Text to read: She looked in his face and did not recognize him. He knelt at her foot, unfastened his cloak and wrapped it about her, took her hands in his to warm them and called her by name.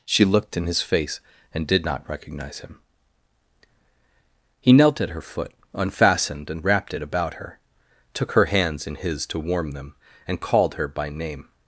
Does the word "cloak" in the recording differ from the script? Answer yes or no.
yes